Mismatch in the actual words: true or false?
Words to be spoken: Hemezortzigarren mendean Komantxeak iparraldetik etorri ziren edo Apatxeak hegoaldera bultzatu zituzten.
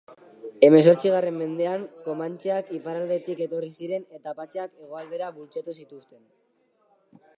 true